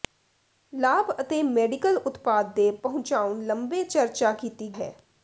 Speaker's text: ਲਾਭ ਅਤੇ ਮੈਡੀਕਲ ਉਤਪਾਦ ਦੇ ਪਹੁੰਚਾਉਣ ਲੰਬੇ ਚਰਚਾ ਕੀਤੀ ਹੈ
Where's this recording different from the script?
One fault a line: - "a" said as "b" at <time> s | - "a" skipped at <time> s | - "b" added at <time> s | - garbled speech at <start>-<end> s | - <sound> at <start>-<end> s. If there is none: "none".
none